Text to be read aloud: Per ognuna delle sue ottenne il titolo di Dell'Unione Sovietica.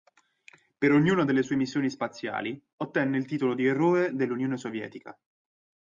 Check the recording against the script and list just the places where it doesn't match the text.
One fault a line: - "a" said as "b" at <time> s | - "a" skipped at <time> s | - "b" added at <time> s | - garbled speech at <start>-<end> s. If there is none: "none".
- "missioni spaziali" added at 1.6 s
- "Eroe" added at 3.7 s